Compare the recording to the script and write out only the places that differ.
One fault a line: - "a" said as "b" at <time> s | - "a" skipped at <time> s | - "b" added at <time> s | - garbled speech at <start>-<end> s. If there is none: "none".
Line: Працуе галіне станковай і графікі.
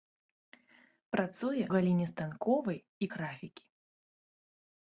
none